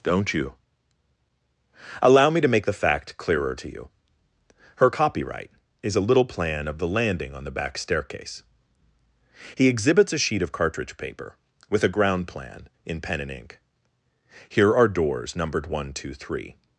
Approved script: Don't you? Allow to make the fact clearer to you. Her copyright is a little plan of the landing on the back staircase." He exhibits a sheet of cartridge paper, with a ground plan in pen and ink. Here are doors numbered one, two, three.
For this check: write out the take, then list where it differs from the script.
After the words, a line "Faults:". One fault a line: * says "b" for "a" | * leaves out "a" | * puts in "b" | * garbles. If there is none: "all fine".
Don't you? Allow me to make the fact clearer to you. Her copyright is a little plan of the landing on the back staircase." He exhibits a sheet of cartridge paper, with a ground plan in pen and ink. Here are doors numbered one, two, three.
Faults:
* puts in "me"